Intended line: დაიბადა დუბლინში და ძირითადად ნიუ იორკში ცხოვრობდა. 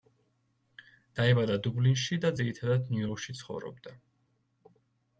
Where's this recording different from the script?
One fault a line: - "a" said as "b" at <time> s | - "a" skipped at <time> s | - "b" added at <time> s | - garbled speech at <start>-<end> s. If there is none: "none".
none